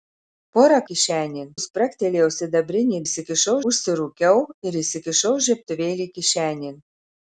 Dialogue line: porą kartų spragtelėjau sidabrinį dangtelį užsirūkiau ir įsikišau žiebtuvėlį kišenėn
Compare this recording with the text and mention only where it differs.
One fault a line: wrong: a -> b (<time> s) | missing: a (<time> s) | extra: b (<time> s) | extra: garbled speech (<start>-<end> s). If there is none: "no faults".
wrong: kartų -> kišenėn (0.9 s)
wrong: dangtelį -> įsikišau (3.1 s)